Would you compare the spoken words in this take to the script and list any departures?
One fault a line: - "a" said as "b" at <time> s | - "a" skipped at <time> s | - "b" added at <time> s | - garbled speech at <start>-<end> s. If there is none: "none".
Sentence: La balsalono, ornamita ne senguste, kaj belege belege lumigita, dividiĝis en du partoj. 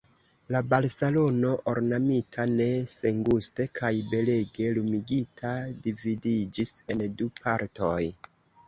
- "belege" skipped at 4.7 s